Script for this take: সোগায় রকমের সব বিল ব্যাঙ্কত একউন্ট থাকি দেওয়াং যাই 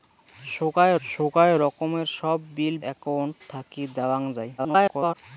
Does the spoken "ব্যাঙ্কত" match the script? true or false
false